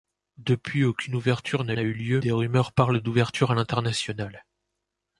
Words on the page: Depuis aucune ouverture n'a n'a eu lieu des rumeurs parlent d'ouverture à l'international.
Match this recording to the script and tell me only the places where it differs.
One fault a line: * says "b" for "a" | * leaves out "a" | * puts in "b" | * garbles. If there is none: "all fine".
all fine